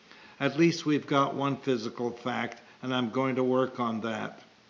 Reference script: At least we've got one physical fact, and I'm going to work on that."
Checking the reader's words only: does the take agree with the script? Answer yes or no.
yes